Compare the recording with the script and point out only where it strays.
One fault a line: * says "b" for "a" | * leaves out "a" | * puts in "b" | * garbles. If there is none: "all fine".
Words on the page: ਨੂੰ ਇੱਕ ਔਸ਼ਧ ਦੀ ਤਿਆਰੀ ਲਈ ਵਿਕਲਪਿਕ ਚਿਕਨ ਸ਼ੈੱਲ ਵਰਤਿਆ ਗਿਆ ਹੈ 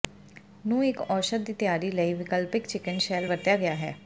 all fine